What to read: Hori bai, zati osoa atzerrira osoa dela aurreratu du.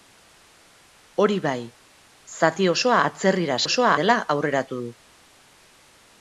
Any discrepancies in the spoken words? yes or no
no